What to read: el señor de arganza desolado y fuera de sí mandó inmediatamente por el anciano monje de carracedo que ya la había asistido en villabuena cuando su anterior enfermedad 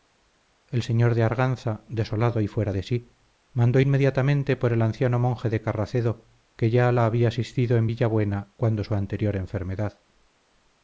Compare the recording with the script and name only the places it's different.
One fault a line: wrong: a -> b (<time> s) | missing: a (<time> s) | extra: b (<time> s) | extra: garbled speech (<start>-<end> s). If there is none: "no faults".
no faults